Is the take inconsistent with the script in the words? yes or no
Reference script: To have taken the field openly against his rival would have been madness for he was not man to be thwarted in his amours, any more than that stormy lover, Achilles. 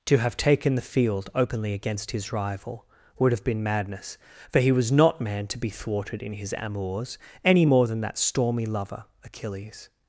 no